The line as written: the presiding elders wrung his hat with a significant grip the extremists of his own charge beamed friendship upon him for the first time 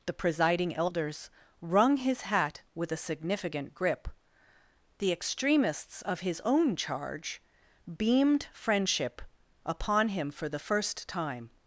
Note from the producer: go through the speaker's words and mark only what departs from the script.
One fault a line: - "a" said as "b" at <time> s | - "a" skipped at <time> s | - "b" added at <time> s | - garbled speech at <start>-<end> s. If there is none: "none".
none